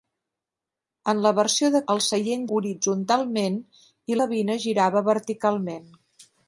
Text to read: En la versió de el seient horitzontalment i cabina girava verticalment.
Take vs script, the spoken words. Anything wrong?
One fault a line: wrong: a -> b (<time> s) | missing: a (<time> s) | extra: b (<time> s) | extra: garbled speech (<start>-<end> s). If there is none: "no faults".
no faults